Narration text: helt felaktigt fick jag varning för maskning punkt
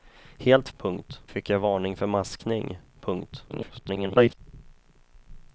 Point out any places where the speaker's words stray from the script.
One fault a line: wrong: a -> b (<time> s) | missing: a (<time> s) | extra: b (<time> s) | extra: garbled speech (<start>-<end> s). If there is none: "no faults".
wrong: felaktigt -> punkt (0.8 s)
extra: garbled speech (3.5-4.4 s)